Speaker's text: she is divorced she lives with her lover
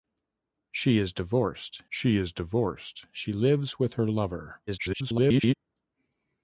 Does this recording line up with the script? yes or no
no